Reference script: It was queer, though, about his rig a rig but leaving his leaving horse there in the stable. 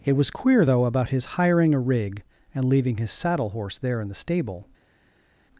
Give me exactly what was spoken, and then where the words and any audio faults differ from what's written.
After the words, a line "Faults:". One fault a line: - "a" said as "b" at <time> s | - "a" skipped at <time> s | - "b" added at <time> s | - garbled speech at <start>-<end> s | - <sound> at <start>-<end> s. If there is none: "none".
It was queer, though, about his hiring a rig and leaving his saddle horse there in the stable.
Faults:
- "rig" said as "hiring" at 1.3 s
- "but" said as "and" at 2.5 s
- "leaving" said as "saddle" at 3.1 s